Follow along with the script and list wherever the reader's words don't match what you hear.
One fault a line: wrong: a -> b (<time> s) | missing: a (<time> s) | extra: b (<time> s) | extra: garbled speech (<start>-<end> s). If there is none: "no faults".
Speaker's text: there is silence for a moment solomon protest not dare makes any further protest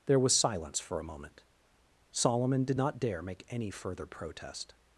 wrong: is -> was (0.2 s)
wrong: protest -> did (2.6 s)
wrong: makes -> make (3.2 s)